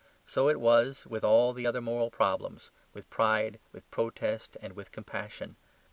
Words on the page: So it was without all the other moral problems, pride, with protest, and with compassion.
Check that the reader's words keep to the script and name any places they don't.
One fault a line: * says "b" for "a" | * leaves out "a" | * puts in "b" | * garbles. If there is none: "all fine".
* says "with" for "without"
* puts in "with"